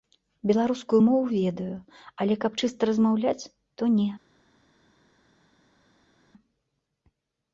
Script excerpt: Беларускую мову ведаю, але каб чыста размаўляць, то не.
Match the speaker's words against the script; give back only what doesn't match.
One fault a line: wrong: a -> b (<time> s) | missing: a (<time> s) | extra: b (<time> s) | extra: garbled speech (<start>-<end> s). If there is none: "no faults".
no faults